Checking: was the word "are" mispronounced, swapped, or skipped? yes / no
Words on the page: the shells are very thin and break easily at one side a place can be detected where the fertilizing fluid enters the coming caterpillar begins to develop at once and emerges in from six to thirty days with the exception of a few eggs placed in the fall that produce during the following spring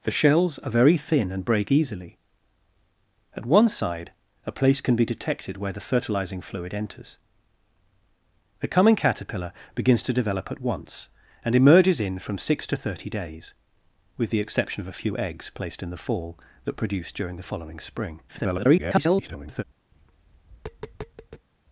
no